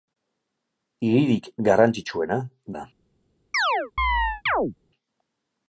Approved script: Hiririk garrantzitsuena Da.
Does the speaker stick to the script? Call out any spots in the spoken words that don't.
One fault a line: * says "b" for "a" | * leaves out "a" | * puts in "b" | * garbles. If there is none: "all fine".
all fine